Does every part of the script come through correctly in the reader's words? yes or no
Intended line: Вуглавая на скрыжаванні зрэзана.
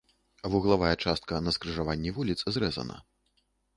no